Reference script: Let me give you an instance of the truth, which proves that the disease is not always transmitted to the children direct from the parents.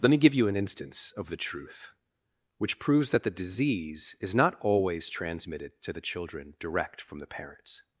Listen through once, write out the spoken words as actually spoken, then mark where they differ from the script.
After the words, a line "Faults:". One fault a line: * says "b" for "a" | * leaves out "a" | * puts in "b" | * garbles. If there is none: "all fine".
Let me give you an instance of the truth, which proves that the disease is not always transmitted to the children direct from the parents.
Faults:
all fine